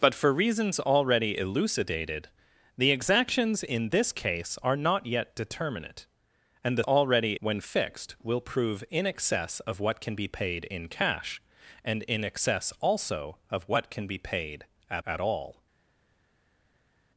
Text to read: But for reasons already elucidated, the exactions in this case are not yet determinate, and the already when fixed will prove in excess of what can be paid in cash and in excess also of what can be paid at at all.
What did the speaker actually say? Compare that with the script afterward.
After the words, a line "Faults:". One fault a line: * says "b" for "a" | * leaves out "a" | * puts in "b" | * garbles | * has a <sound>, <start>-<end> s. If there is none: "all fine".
But for reasons already elucidated, the exactions in this case are not yet determinate, and the already when fixed will prove in excess of what can be paid in cash and in excess also of what can be paid at at all.
Faults:
all fine